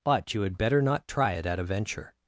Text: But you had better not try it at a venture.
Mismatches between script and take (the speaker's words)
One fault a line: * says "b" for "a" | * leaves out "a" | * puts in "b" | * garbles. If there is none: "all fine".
all fine